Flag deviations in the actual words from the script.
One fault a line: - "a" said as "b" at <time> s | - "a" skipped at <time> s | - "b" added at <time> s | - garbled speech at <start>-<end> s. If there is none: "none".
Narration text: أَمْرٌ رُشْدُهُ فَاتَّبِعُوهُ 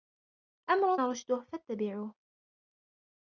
none